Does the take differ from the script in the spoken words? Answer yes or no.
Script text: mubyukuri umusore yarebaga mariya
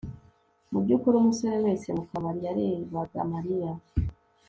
yes